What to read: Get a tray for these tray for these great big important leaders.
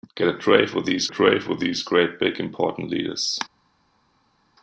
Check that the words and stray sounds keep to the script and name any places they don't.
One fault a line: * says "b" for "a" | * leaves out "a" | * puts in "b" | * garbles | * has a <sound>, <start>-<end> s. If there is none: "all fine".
all fine